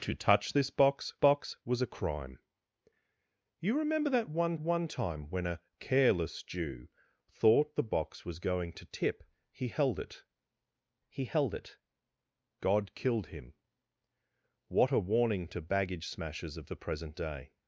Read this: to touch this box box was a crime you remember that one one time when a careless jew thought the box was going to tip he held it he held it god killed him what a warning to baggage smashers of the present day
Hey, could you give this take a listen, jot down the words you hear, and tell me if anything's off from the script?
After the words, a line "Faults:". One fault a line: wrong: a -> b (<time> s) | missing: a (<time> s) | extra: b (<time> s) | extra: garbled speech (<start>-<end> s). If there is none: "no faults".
to touch this box box was a crime you remember that one one time when a careless jew thought the box was going to tip he held it he held it god killed him what a warning to baggage smashers of the present day
Faults:
no faults